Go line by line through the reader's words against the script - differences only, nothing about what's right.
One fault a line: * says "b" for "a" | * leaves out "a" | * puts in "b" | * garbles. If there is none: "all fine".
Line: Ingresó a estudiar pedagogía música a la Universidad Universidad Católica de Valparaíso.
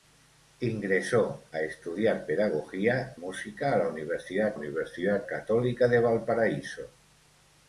all fine